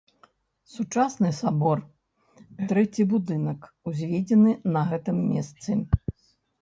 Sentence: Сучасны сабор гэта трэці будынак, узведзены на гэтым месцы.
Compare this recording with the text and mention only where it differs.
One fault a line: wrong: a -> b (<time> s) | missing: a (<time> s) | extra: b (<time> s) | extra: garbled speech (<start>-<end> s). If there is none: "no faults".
missing: гэта (1.8 s)